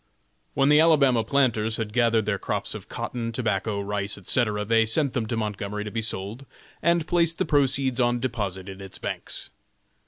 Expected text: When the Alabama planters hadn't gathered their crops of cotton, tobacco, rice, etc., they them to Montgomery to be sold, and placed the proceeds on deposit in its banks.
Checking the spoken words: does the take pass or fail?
fail